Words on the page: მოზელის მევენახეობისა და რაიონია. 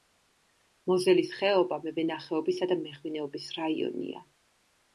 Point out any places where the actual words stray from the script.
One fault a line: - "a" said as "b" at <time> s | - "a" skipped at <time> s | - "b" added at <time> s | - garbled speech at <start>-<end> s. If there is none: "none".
- "ხეობა" added at 1.4 s
- "მეღვინეობის" added at 2.9 s